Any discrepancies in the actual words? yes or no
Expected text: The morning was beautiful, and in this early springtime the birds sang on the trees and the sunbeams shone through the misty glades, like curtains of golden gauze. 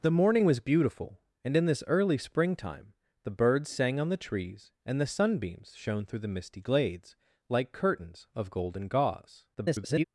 yes